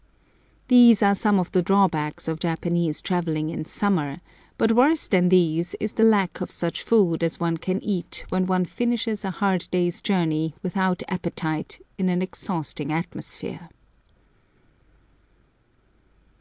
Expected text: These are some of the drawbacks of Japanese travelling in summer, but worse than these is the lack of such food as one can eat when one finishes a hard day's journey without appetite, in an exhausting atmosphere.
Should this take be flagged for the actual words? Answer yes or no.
no